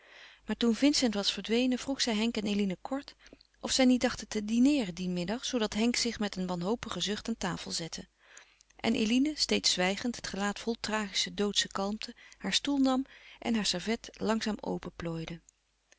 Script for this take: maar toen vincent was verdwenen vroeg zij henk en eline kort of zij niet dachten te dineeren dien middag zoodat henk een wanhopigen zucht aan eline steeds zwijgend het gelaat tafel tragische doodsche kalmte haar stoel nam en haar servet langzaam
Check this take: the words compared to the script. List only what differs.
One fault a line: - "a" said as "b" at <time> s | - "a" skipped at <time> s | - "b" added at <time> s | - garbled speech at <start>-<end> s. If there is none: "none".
- "zich met" added at 6.0 s
- "tafel zette en" added at 7.4 s
- "tafel" said as "vol" at 10.6 s